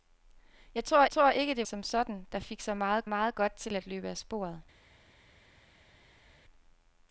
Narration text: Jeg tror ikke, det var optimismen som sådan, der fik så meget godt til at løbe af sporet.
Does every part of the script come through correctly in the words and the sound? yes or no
no